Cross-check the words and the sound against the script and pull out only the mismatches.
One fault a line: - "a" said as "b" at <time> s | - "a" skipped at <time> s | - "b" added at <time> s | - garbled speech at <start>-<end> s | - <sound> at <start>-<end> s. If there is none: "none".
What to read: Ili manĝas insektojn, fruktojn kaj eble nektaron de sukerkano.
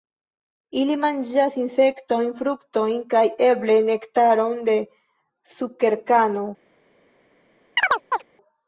- chirp at 7.8-8.2 s